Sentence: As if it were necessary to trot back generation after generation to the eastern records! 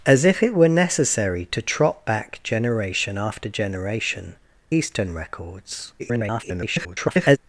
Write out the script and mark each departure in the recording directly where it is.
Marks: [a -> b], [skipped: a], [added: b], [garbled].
As if it were necessary to trot back generation after generation [skipped: to the] eastern records! [garbled]